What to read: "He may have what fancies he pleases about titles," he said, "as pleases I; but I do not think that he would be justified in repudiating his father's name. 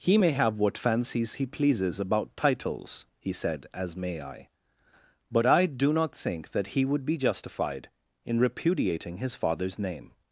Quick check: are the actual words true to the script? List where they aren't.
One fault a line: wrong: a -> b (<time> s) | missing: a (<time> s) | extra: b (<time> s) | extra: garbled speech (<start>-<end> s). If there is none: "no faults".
wrong: pleases -> may (4.0 s)